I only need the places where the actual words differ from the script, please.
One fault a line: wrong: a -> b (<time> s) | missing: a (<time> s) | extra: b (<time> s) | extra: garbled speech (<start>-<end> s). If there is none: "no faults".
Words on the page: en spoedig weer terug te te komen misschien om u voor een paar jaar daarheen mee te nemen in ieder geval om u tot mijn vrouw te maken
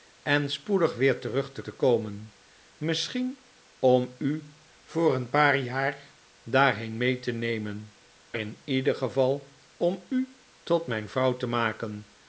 no faults